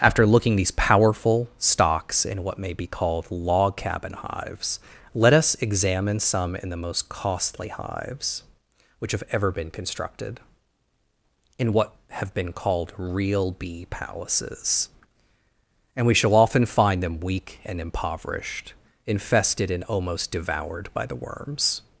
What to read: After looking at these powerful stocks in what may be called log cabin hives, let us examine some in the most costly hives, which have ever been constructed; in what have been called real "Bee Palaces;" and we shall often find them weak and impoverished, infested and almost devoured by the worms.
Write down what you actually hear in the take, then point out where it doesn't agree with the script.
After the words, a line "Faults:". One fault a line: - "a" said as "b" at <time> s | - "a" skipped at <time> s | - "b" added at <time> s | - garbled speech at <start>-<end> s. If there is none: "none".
After looking these powerful stocks in what may be called log cabin hives, let us examine some in the most costly hives, which have ever been constructed; in what have been called real "Bee Palaces;" and we shall often find them weak and impoverished, infested and almost devoured by the worms.
Faults:
- "at" skipped at 0.6 s